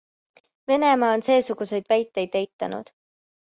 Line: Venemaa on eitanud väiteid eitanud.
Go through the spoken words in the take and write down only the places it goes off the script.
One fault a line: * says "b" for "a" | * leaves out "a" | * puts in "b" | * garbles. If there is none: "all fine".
* says "seesuguseid" for "eitanud"